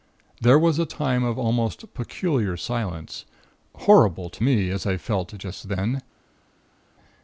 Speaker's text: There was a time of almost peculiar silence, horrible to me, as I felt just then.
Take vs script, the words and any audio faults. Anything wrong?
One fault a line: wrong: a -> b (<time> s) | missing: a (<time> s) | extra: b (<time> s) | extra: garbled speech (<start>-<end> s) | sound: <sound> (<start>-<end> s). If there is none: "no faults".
no faults